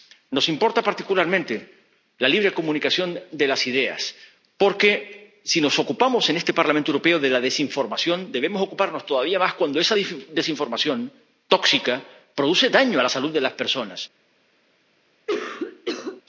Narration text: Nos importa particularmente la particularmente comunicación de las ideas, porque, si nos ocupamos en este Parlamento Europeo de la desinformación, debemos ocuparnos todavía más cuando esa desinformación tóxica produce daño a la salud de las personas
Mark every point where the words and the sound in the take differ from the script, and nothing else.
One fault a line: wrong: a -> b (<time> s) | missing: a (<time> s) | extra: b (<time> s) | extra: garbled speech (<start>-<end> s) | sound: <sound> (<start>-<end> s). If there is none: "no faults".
wrong: particularmente -> libre (2.3 s)
sound: cough (15.3-16.2 s)